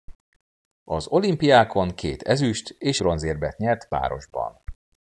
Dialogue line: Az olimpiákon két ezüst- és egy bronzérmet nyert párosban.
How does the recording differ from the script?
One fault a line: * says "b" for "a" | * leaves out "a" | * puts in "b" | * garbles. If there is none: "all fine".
* leaves out "egy"